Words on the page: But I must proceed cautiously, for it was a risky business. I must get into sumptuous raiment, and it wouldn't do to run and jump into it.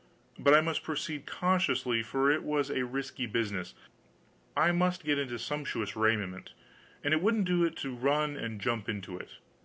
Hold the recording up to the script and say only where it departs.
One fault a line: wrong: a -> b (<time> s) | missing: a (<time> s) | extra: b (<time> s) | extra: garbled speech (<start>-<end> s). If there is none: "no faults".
no faults